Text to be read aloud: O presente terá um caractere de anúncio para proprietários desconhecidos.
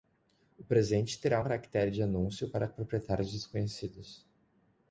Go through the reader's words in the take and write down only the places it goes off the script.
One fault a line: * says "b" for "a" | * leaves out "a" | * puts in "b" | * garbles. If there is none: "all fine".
all fine